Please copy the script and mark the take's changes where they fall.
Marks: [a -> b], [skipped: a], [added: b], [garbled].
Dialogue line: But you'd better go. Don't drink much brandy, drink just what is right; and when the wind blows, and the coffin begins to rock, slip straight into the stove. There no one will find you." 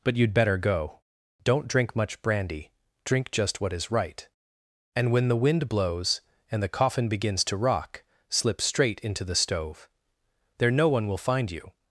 But you'd better go. Don't drink much brandy, drink just what is right; and when the wind blows, and the coffin begins to rock, slip straight into the stove. There no one will find you."